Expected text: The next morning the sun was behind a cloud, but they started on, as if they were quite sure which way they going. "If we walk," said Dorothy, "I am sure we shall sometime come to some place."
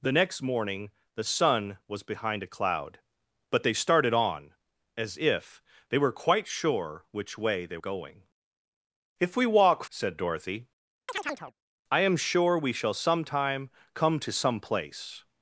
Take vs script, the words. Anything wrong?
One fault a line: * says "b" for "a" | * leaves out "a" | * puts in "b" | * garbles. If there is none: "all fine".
all fine